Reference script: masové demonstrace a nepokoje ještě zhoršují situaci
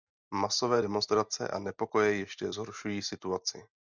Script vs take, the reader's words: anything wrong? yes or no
no